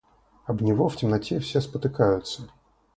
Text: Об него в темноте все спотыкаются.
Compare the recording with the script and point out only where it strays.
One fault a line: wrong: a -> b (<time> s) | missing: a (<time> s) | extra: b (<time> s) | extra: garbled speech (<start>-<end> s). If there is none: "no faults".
no faults